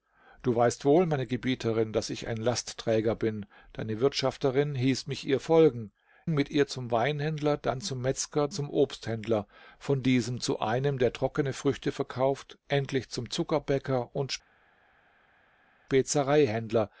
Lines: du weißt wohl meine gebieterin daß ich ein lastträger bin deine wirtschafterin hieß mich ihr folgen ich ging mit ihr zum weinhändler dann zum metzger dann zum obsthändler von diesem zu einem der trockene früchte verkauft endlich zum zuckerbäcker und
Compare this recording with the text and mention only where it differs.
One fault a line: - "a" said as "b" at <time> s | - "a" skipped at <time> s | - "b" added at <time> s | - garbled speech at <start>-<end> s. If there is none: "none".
- "ich ging" skipped at 5.9 s
- "dann" skipped at 8.5 s